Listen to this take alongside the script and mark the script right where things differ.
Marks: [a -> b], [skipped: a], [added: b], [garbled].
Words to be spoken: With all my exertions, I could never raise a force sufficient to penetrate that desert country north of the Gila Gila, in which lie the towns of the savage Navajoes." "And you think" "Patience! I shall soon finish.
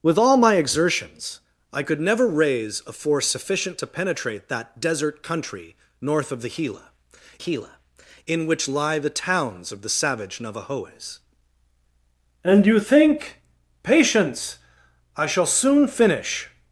With all my exertions, I could never raise a force sufficient to penetrate that desert country north of the Gila Gila, in which lie the towns of the savage Navajoes." "And you think" "Patience! I shall soon finish.